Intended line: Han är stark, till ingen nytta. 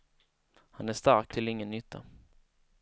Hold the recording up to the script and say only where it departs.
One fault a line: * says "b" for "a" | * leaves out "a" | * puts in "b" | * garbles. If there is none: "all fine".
all fine